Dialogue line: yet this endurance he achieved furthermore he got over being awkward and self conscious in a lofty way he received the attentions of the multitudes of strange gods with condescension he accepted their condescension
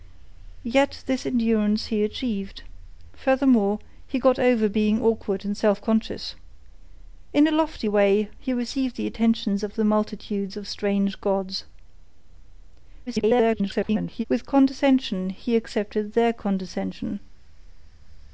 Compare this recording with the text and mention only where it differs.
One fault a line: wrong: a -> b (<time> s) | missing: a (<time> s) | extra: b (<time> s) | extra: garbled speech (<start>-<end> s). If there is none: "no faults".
extra: garbled speech (13.1-14.2 s)